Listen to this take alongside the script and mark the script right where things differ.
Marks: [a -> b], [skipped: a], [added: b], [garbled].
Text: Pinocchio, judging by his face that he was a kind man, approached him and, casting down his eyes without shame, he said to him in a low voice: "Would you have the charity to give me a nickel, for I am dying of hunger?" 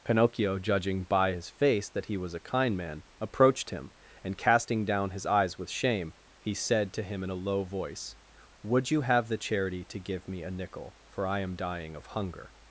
Pinocchio, judging by his face that he was a kind man, approached him and, casting down his eyes [without -> with] shame, he said to him in a low voice: "Would you have the charity to give me a nickel, for I am dying of hunger?"